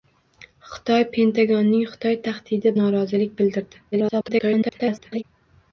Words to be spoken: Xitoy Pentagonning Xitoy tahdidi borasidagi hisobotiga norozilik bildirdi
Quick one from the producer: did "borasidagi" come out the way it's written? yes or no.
no